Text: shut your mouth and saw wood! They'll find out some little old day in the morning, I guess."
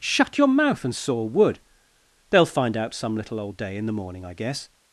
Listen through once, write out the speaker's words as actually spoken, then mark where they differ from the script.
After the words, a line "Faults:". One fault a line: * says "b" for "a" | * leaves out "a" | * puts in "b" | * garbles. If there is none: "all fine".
shut your mouth and saw wood! They'll find out some little old day in the morning, I guess."
Faults:
all fine